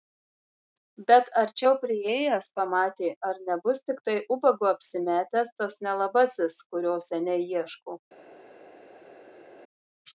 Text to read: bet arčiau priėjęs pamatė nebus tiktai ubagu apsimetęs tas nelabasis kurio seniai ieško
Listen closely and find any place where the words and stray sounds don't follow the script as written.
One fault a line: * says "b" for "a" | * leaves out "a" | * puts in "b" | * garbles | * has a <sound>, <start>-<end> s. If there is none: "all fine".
* puts in "ar"